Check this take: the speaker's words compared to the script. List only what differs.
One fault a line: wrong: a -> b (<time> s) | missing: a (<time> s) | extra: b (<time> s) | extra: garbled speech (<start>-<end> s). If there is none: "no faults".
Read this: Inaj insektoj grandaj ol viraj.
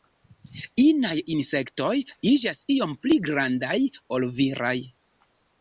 extra: iĝas iom pli (2.3 s)